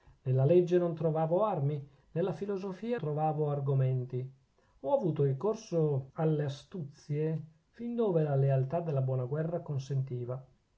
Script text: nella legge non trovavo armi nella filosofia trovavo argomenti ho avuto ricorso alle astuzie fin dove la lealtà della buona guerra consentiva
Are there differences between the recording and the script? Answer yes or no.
no